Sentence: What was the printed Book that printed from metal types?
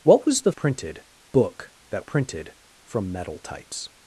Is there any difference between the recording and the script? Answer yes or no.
no